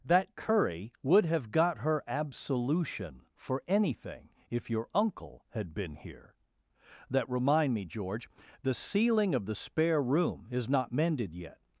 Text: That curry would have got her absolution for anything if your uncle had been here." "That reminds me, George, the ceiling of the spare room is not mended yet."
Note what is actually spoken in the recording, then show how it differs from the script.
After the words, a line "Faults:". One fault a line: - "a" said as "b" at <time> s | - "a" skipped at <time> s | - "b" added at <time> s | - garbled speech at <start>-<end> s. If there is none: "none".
That curry would have got her absolution for anything if your uncle had been here." "That remind me, George, the ceiling of the spare room is not mended yet."
Faults:
- "reminds" said as "remind" at 7.3 s